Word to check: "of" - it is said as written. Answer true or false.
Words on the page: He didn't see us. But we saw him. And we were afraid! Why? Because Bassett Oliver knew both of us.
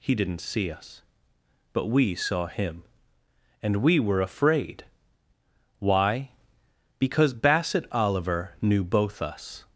false